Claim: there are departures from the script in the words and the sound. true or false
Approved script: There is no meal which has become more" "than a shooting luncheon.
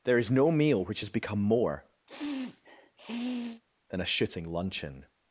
true